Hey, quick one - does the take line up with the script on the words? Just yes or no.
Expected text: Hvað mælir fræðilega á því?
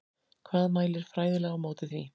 no